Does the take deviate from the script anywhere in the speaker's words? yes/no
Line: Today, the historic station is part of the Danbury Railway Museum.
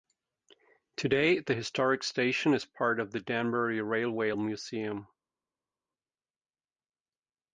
no